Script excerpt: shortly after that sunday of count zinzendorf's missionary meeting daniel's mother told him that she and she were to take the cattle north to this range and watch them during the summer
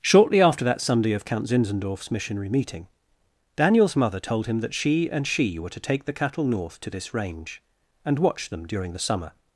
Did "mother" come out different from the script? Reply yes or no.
no